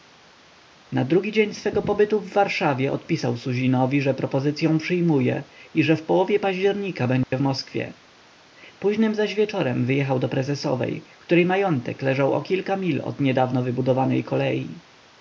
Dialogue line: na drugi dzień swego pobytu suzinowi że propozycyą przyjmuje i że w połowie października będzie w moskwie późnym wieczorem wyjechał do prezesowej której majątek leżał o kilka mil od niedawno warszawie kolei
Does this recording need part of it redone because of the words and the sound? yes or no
yes